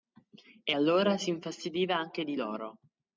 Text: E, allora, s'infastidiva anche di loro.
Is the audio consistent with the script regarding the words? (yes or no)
yes